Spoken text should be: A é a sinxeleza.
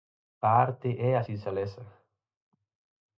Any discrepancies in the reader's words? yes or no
yes